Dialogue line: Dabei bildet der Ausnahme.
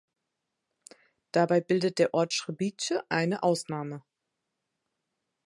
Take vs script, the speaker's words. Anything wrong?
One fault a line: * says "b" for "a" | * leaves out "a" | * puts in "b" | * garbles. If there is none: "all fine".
* puts in "Ort Srbice eine"